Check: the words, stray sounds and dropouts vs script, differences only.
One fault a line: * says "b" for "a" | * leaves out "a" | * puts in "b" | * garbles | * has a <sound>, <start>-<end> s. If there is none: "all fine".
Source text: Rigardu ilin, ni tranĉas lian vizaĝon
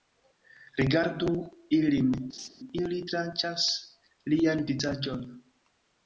* has a laugh, 2.3-2.5 s
* says "ili" for "ni"